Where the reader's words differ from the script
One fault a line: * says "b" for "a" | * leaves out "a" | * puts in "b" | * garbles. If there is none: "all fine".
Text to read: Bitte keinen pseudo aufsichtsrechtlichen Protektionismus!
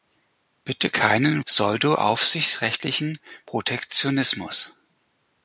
all fine